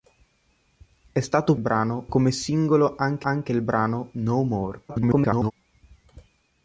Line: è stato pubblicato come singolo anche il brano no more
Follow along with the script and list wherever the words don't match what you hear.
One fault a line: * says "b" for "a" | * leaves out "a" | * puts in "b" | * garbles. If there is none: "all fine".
* says "brano" for "pubblicato"
* puts in "anche"
* garbles